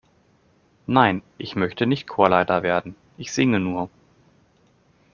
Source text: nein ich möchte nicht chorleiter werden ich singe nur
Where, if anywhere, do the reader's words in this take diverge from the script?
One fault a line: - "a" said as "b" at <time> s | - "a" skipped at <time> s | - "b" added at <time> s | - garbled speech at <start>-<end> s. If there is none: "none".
none